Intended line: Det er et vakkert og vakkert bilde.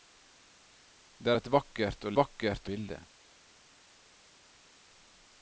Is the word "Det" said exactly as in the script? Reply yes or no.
yes